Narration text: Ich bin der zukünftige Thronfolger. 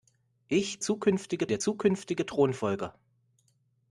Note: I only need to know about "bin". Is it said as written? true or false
false